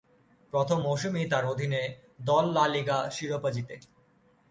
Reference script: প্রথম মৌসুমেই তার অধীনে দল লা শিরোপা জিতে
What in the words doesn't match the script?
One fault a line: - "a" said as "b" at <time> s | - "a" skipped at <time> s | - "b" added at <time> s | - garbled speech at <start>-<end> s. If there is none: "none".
- "লিগা" added at 2.7 s